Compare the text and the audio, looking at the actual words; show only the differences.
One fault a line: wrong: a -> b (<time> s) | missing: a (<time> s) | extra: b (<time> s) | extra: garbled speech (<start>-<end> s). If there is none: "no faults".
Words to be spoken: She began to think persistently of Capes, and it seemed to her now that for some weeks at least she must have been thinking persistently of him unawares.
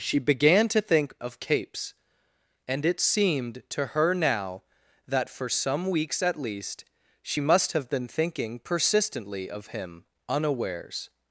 missing: persistently (1.2 s)